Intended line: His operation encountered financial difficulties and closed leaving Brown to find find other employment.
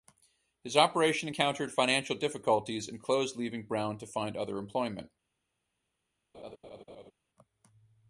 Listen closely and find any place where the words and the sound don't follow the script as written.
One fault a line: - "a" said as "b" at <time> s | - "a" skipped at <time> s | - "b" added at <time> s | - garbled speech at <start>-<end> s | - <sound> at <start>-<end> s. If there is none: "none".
- "find" skipped at 4.4 s
- laugh at 6.3-7.1 s